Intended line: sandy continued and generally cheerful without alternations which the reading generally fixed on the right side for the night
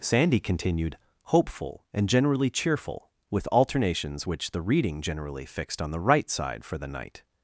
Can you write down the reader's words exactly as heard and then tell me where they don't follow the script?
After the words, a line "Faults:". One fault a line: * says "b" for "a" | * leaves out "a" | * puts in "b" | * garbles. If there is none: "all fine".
sandy continued hopeful and generally cheerful with alternations which the reading generally fixed on the right side for the night
Faults:
* puts in "hopeful"
* says "with" for "without"